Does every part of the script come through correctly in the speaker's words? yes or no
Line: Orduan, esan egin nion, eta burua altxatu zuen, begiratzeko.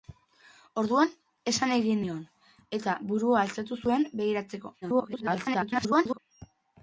no